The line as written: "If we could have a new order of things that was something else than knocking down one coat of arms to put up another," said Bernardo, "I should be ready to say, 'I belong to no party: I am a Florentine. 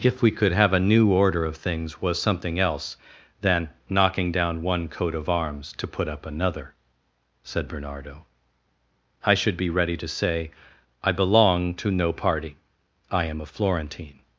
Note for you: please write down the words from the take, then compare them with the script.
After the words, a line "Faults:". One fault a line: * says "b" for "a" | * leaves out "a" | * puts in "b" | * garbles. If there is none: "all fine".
"If we could have a new order of things was something else than knocking down one coat of arms to put up another," said Bernardo, "I should be ready to say, 'I belong to no party: I am a Florentine.
Faults:
* leaves out "that"